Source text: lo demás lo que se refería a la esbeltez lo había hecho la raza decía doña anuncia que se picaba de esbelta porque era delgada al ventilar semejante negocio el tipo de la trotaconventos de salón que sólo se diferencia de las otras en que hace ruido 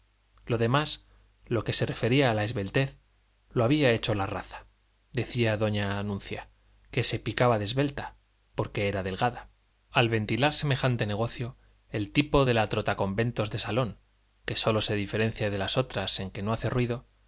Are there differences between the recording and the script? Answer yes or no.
yes